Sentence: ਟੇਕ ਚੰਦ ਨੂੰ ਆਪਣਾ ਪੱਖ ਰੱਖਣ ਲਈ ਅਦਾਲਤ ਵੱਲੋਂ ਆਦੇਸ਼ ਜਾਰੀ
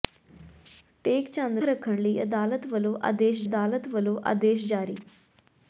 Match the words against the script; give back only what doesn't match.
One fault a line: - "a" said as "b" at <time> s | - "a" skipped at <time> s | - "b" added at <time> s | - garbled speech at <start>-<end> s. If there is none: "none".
- "ਨੂੰ ਆਪਣਾ ਪੱਖ ਰੱਖਣ ਲਈ" said as "ਰੱਖਣ ਲਈ ਅਦਾਲਤ ਵੱਲੋਂ ਆਦੇਸ਼" at 1.6 s